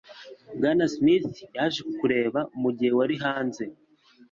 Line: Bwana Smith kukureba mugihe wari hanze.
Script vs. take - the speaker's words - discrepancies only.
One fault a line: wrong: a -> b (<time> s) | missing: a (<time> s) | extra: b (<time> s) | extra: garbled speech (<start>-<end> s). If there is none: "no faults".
extra: yaje (1.6 s)